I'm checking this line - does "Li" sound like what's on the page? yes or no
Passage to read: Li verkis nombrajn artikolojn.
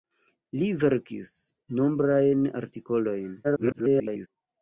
yes